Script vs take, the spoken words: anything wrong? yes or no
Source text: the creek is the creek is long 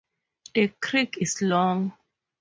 yes